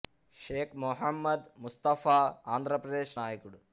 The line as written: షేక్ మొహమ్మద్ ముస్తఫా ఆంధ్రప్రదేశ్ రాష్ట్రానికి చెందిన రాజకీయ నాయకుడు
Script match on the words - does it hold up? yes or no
no